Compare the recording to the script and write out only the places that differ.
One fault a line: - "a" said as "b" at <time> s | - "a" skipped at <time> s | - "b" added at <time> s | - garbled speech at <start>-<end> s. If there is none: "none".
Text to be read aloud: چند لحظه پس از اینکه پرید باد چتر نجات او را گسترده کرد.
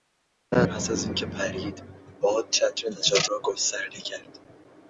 - "لحظه" skipped at 0.6 s
- "او" skipped at 3.3 s